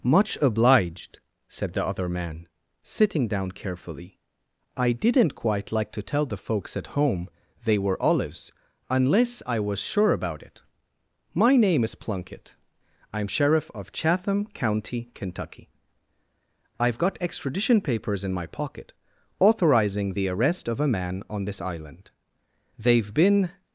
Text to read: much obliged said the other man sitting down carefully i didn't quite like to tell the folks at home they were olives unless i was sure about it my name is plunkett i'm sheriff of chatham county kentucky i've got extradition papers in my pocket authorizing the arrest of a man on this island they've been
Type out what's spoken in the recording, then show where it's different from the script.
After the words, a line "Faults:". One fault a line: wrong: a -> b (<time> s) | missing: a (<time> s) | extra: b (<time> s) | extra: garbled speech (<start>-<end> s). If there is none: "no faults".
much obliged said the other man sitting down carefully i didn't quite like to tell the folks at home they were olives unless i was sure about it my name is plunkett i'm sheriff of chatham county kentucky i've got extradition papers in my pocket authorizing the arrest of a man on this island they've been
Faults:
no faults